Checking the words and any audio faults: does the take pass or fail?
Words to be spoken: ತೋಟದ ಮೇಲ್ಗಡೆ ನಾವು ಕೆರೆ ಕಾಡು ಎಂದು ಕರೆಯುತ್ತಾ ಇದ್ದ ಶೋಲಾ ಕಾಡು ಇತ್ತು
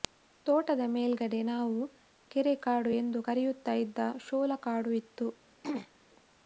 fail